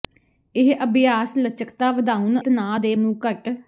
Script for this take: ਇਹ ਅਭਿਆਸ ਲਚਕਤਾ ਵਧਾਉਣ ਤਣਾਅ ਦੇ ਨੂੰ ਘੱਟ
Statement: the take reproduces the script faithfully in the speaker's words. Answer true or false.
true